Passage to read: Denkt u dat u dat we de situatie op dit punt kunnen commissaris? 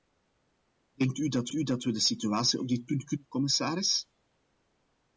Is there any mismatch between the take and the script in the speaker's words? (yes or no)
no